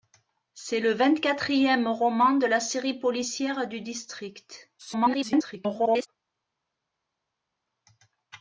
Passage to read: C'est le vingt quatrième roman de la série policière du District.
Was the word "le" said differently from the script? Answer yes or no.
no